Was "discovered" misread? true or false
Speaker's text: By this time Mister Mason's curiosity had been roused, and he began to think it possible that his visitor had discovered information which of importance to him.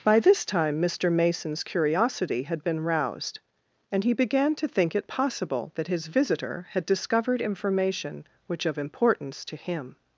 false